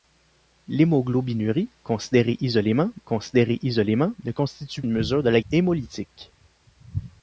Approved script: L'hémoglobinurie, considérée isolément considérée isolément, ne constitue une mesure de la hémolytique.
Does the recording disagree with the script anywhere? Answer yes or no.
no